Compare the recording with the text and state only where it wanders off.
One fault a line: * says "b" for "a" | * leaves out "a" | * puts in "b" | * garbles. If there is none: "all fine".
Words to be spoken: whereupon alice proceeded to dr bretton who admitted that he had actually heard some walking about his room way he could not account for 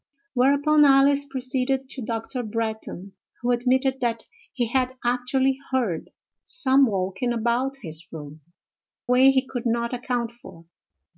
all fine